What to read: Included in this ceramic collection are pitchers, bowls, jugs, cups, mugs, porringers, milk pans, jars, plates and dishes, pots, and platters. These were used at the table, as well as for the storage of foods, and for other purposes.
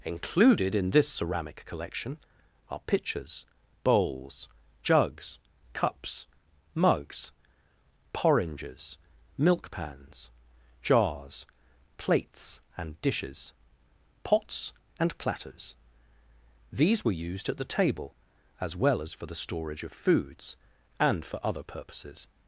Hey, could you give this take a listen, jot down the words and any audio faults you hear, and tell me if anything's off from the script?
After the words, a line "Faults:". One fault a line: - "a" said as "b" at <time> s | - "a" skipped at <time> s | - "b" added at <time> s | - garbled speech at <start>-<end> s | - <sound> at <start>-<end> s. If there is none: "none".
Included in this ceramic collection are pitchers, bowls, jugs, cups, mugs, porringers, milk pans, jars, plates and dishes, pots, and platters. These were used at the table, as well as for the storage of foods, and for other purposes.
Faults:
none